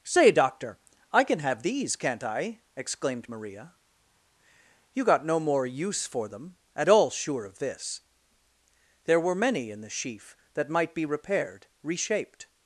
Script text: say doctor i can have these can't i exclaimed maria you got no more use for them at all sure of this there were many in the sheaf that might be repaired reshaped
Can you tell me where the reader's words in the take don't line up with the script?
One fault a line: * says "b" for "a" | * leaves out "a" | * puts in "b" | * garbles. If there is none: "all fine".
all fine